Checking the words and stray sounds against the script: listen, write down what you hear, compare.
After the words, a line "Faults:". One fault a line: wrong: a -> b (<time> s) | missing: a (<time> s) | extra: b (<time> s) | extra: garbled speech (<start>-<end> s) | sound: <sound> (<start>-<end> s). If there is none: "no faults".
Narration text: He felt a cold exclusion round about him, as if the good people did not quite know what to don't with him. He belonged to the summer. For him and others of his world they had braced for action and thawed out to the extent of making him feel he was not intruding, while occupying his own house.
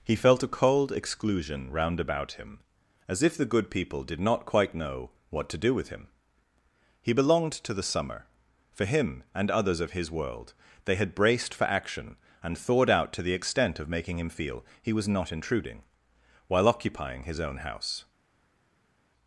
He felt a cold exclusion round about him, as if the good people did not quite know what to do with him. He belonged to the summer. For him and others of his world they had braced for action and thawed out to the extent of making him feel he was not intruding, while occupying his own house.
Faults:
wrong: don't -> do (5.6 s)